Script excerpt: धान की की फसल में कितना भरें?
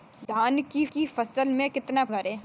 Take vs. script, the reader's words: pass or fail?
pass